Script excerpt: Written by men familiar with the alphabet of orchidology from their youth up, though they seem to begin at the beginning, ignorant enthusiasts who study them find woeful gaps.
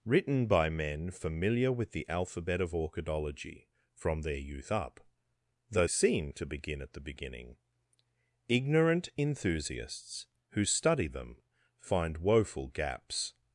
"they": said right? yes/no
no